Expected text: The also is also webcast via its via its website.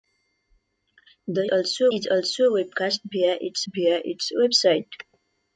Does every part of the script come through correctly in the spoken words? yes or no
yes